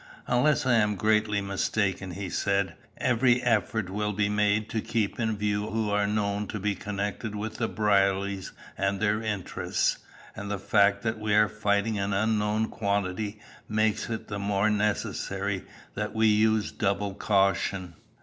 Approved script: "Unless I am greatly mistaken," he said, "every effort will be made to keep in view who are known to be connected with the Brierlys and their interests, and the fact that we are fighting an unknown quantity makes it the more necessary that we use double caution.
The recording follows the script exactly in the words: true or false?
true